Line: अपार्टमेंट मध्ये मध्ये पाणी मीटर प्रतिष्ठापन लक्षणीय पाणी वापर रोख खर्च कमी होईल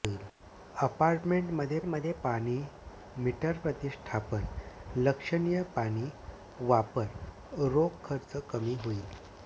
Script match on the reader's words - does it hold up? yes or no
yes